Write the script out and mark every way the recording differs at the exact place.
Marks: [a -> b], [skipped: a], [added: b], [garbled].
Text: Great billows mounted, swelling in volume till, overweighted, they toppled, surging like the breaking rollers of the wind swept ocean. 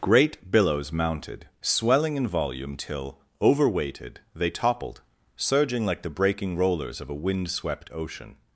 Great billows mounted, swelling in volume till, overweighted, they toppled, surging like the breaking rollers of [the -> a] wind swept ocean.